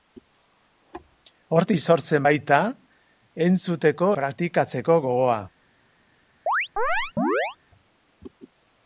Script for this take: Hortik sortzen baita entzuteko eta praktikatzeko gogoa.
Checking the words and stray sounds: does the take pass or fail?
fail